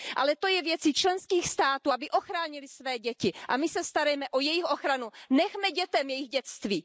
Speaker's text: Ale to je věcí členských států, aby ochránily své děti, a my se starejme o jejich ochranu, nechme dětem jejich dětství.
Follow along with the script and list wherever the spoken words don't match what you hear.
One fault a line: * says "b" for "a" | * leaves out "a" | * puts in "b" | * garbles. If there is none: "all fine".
all fine